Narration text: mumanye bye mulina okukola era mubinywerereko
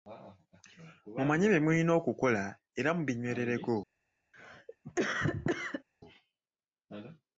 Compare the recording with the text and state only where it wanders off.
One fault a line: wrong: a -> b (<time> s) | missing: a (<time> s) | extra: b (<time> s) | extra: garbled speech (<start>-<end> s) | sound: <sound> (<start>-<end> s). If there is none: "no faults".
sound: cough (4.3-5.8 s)